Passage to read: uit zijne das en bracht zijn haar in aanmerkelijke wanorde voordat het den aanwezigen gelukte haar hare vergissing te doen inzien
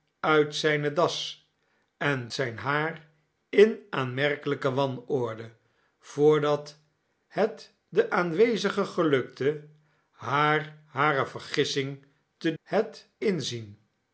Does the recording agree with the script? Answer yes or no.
no